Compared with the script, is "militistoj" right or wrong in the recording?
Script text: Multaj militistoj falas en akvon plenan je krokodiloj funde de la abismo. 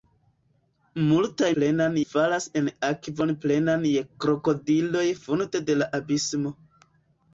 wrong